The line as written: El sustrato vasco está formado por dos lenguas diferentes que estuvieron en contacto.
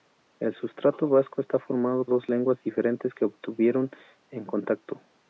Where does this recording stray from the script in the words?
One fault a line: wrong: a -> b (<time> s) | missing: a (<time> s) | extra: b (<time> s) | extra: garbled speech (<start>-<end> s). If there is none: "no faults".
missing: por (2.0 s)